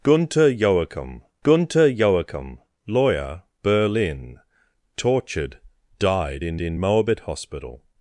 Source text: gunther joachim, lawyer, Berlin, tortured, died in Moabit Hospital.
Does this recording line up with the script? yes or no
no